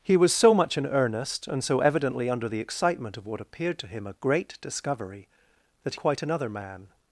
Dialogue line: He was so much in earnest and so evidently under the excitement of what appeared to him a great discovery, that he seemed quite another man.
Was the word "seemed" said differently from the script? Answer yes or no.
yes